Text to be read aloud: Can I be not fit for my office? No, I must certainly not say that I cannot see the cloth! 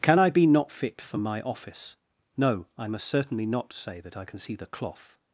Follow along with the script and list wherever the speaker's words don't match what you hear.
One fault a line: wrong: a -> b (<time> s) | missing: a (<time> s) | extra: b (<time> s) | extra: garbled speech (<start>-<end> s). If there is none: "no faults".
wrong: cannot -> can (4.2 s)